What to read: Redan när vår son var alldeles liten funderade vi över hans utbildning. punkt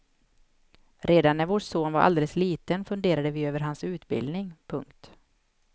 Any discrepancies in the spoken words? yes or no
no